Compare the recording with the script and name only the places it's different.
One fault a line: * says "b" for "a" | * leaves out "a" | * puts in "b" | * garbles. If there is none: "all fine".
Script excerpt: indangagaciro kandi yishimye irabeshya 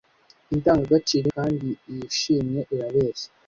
all fine